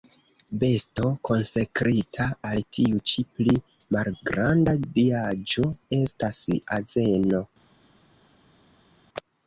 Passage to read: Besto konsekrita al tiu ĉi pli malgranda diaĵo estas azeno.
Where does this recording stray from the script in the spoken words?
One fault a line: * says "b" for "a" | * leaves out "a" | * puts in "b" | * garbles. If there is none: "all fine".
all fine